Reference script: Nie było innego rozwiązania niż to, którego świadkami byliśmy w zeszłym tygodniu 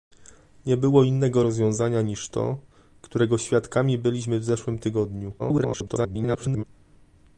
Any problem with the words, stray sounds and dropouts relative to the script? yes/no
yes